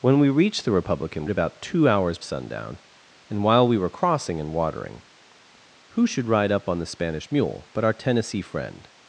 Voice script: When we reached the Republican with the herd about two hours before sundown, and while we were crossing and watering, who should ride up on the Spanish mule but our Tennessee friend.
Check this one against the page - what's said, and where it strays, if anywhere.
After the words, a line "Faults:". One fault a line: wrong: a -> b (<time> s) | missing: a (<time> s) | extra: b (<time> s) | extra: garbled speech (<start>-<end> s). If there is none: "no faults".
When we reached the Republican about two hours sundown, and while we were crossing and watering, who should ride up on the Spanish mule but our Tennessee friend.
Faults:
missing: with the herd (1.2 s)
missing: before (2.2 s)